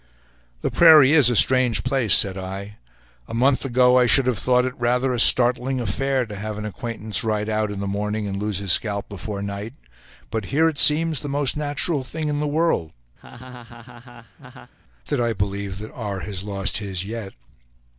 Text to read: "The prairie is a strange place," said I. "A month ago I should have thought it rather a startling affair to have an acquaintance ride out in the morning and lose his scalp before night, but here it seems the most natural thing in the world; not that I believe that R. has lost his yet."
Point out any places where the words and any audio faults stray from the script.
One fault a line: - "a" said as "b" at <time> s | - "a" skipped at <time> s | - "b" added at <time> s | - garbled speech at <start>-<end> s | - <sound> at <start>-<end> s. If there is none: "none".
- "not" skipped at 12.9 s
- laugh at 13.2-14.7 s